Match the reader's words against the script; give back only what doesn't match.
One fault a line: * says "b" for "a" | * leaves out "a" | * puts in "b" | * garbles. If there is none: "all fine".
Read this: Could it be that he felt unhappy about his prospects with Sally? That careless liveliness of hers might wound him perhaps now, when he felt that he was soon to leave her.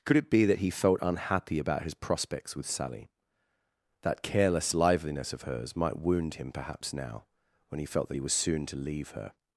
all fine